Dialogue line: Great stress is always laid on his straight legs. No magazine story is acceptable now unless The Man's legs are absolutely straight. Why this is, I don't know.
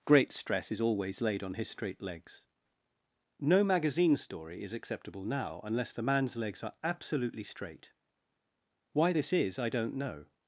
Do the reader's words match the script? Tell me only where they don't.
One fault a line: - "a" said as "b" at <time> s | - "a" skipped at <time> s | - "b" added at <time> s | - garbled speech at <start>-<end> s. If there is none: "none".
none